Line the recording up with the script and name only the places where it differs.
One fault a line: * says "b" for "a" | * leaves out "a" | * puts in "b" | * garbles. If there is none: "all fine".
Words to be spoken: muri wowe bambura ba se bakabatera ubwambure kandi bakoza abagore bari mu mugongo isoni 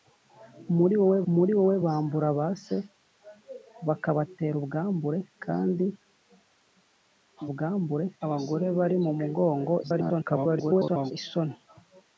* puts in "muri wowe"
* says "ubwambure" for "bakoza"
* garbles